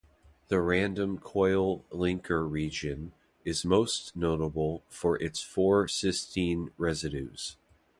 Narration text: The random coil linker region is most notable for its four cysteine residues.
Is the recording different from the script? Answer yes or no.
no